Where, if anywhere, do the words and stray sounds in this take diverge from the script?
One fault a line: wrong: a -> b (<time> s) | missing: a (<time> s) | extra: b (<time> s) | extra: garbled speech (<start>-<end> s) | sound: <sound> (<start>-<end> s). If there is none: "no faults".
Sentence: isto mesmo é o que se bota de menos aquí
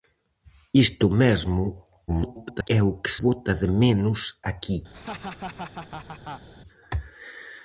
extra: garbled speech (2.1-2.7 s)
missing: se (3.1 s)
sound: laugh (4.9-6.5 s)